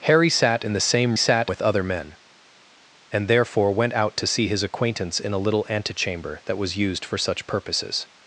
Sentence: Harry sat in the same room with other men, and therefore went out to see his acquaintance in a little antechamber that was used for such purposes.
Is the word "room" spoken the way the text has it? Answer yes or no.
no